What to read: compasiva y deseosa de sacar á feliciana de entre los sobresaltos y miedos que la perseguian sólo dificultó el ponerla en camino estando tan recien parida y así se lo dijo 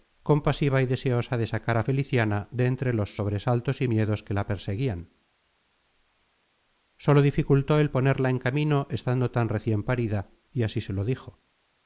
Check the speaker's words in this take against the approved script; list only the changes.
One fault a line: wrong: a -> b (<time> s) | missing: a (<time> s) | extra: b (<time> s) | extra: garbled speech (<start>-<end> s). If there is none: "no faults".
no faults